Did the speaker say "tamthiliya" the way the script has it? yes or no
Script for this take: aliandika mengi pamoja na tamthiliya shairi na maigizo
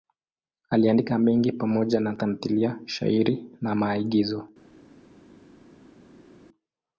yes